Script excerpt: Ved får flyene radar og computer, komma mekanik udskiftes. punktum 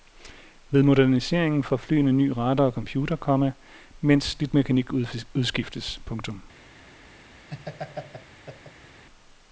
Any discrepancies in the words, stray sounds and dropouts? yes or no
yes